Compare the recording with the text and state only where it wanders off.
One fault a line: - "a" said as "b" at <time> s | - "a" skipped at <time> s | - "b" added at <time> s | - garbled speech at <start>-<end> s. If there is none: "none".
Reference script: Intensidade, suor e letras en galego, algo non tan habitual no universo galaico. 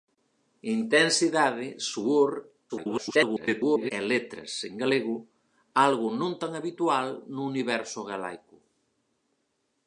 - garbled speech at 2.7-3.9 s